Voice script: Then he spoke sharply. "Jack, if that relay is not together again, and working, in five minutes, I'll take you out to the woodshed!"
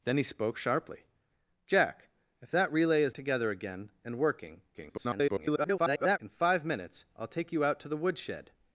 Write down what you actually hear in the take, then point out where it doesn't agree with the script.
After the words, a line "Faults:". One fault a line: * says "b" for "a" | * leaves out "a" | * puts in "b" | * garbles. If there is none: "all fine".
Then he spoke sharply. "Jack, if that relay is together again, and working, [garbled] in five minutes, I'll take you out to the woodshed!"
Faults:
* leaves out "not"
* garbles